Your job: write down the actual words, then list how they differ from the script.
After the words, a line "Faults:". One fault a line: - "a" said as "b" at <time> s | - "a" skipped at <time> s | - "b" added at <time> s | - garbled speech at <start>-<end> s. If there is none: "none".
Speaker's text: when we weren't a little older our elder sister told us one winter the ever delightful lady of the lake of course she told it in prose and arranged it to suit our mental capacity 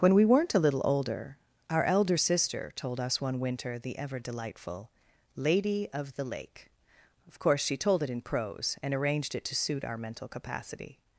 when we weren't a little older our elder sister told us one winter the ever delightful lady of the lake of course she told it in prose and arranged it to suit our mental capacity
Faults:
none